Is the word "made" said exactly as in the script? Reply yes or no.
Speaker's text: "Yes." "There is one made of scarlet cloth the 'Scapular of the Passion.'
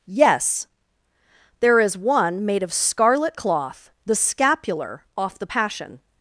yes